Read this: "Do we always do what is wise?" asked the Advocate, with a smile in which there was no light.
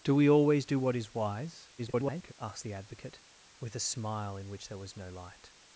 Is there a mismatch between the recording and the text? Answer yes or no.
yes